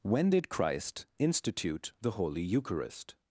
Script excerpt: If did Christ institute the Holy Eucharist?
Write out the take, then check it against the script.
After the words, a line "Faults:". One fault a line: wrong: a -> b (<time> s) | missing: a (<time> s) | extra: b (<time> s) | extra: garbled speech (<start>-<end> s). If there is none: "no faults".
When did Christ institute the Holy Eucharist?
Faults:
wrong: If -> When (0.0 s)